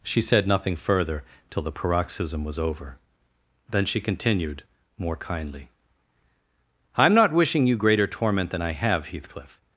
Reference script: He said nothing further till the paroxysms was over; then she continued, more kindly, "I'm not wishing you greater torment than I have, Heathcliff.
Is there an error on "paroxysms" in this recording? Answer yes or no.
yes